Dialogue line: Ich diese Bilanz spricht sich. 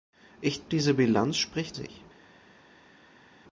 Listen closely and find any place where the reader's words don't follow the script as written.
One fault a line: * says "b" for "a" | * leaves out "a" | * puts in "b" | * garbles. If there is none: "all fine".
all fine